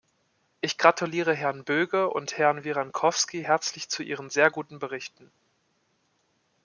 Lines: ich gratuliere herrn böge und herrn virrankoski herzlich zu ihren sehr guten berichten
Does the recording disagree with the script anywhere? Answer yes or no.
no